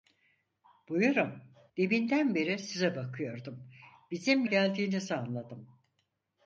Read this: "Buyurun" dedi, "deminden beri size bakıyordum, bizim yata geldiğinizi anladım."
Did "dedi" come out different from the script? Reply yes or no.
yes